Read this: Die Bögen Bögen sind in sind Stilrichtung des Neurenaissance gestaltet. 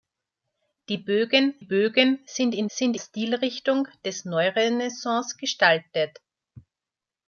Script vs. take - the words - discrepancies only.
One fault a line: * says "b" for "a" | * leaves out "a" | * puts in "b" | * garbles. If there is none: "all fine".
all fine